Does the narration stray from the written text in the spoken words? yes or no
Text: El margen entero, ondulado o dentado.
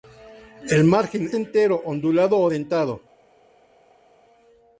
no